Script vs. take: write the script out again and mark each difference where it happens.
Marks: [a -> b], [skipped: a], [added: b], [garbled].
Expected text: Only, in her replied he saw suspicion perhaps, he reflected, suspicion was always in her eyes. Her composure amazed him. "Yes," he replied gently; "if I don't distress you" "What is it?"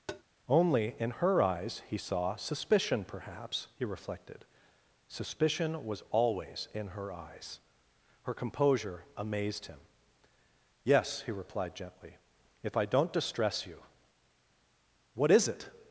Only, in her [replied -> eyes] he saw suspicion perhaps, he reflected, suspicion was always in her eyes. Her composure amazed him. "Yes," he replied gently; "if I don't distress you" "What is it?"